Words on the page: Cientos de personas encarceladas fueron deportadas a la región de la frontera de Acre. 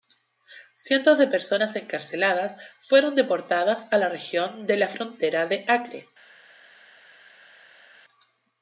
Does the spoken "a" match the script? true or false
true